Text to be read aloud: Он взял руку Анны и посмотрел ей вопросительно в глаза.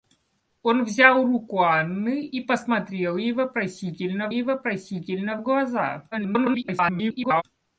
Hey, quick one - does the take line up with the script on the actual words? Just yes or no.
no